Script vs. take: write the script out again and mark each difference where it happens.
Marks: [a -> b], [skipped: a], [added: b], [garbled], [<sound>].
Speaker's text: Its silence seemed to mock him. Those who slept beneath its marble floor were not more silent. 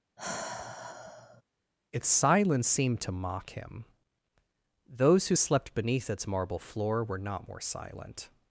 [sigh] Its silence seemed to mock him. Those who slept beneath its marble floor were not more silent.